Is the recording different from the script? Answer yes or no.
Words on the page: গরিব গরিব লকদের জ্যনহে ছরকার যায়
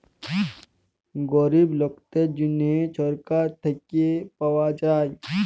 yes